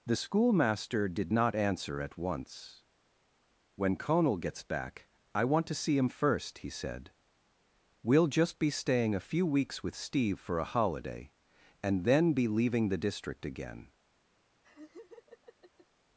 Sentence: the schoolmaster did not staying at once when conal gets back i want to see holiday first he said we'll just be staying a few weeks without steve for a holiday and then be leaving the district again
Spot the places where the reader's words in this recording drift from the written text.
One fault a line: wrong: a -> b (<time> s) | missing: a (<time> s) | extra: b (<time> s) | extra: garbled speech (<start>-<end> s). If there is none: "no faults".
wrong: staying -> answer (1.6 s)
wrong: holiday -> him (6.0 s)
wrong: without -> with (9.8 s)